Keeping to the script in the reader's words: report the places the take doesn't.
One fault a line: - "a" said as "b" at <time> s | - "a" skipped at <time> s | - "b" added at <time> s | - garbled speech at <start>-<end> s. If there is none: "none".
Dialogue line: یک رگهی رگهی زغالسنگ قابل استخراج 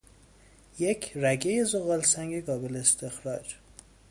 - "رگهی" skipped at 1.6 s